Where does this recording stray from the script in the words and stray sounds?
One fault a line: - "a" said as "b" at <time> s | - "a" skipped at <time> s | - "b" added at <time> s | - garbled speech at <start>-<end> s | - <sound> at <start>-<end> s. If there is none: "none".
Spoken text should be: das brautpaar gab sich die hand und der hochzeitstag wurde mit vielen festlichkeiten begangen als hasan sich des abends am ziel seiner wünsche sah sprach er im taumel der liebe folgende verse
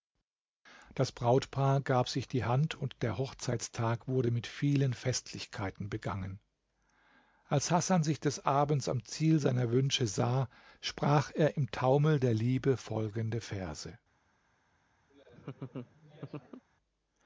- laugh at 15.1-16.6 s